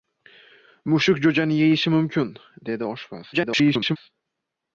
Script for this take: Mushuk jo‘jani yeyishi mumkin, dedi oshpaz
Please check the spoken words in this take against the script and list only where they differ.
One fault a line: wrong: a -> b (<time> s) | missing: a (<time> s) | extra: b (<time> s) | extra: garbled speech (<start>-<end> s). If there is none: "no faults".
extra: garbled speech (3.3-4.0 s)